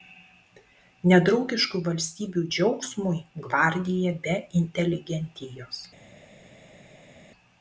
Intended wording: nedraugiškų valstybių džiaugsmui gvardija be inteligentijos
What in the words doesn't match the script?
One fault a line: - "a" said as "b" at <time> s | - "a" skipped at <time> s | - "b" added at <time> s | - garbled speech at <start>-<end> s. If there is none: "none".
none